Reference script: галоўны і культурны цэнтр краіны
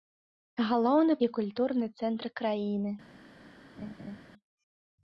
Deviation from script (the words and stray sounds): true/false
true